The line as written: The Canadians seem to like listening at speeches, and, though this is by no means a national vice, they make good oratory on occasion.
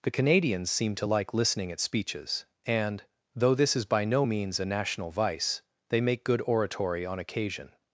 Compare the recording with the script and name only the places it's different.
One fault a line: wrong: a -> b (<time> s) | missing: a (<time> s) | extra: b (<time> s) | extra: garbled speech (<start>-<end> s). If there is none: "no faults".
no faults